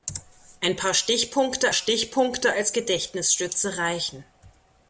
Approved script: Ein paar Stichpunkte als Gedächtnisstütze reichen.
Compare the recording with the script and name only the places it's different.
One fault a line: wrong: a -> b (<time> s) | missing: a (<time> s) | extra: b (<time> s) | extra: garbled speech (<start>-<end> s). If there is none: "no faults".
extra: Stichpunkte (1.7 s)